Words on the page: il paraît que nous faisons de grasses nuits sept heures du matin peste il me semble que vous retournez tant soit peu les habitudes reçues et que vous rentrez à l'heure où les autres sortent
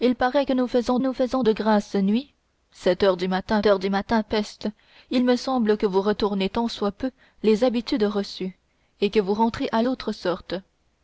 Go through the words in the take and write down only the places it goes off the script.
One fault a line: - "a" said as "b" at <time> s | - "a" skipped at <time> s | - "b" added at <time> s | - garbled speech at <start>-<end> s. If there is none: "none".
- "nous faisons" added at 1.0 s
- "heures du matin" added at 3.7 s
- "l'heure où les" skipped at 9.8 s